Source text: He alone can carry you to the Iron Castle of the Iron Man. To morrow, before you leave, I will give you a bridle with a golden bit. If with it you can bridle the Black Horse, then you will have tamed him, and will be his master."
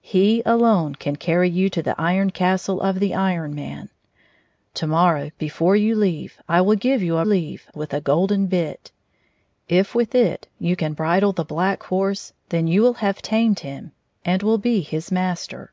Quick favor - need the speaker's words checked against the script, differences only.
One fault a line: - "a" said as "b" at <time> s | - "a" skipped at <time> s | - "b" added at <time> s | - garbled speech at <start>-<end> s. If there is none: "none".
- "bridle" said as "leave" at 7.2 s